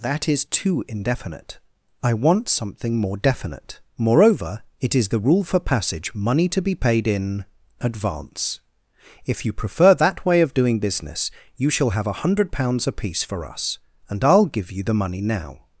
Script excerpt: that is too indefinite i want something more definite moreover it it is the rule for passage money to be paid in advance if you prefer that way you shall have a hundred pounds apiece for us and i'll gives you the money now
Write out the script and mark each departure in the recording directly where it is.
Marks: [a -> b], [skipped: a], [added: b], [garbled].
that is too indefinite i want something more definite moreover it [skipped: it] is the rule for passage money to be paid in advance if you prefer that way [added: of doing business] you shall have a hundred pounds apiece for us and i'll [gives -> give] you the money now